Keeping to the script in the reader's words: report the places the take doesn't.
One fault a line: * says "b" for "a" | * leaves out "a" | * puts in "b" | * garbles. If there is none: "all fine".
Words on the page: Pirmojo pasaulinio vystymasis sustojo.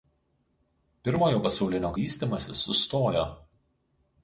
all fine